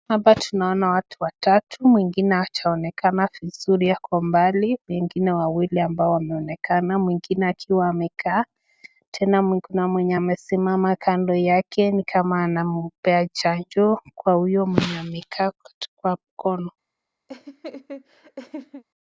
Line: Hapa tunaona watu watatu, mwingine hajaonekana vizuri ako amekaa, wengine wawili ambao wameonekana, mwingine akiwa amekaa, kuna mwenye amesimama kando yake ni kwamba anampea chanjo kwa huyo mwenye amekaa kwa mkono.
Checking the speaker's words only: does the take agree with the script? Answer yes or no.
no